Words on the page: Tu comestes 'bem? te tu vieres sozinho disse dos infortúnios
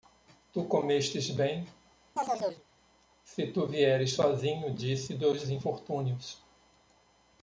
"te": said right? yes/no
no